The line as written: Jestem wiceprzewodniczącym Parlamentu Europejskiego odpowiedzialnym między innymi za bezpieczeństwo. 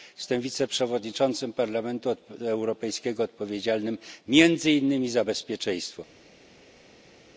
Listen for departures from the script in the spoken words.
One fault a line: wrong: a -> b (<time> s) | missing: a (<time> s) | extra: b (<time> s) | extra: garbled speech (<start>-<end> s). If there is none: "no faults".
no faults